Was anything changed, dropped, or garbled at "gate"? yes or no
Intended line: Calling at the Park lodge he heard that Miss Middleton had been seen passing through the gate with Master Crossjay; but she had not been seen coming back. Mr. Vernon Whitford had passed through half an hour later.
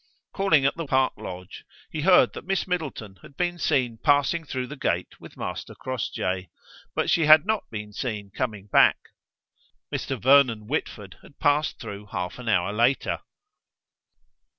no